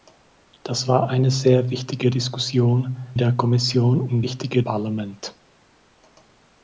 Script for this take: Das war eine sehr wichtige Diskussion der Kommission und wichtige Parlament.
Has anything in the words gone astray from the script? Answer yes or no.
no